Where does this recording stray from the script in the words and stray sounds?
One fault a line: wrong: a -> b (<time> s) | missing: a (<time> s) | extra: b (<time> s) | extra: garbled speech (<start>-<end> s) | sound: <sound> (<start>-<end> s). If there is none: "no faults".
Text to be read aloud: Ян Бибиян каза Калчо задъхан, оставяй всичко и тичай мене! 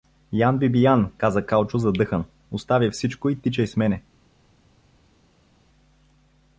extra: с (3.7 s)